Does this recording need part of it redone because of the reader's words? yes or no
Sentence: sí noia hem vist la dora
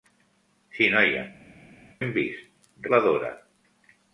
no